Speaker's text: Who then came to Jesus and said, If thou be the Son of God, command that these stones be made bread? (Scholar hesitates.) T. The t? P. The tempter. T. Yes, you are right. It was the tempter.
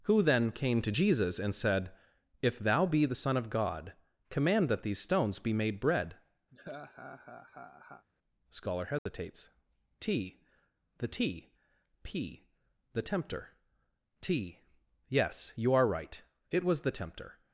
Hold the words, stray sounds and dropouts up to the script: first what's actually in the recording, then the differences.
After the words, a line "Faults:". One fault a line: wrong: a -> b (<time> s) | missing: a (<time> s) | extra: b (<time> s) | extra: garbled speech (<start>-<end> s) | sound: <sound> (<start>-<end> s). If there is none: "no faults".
Who then came to Jesus and said, If thou be the Son of God, command that these stones be made bread? (Scholar hesitates.) T. The t? P. The tempter. T. Yes, you are right. It was the tempter.
Faults:
sound: laugh (6.5-8.1 s)
sound: dropout (9.0-9.1 s)